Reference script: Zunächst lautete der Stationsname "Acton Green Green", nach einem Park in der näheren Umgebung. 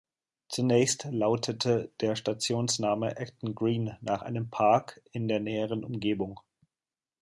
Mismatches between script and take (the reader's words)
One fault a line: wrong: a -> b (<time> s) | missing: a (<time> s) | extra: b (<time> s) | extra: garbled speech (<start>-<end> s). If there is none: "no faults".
missing: Green (4.0 s)